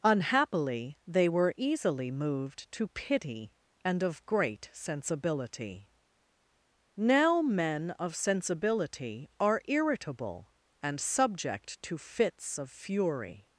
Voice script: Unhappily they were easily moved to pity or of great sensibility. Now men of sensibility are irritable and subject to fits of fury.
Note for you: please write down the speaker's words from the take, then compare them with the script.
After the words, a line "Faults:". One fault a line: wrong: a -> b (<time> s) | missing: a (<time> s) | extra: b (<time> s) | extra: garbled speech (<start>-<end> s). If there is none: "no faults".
Unhappily they were easily moved to pity and of great sensibility. Now men of sensibility are irritable and subject to fits of fury.
Faults:
wrong: or -> and (3.8 s)